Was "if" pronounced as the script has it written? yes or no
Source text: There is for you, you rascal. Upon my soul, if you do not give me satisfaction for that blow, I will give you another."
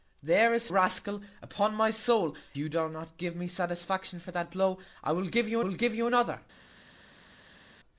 no